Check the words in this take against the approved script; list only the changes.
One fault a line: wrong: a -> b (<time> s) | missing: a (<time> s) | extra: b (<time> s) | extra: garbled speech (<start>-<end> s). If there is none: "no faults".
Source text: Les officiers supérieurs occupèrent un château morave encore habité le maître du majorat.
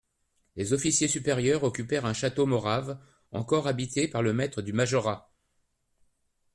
extra: par (4.1 s)